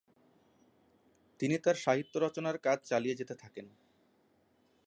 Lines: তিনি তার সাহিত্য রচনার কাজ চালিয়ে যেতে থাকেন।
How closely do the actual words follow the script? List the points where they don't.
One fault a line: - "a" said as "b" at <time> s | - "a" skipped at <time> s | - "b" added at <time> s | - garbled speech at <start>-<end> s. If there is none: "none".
none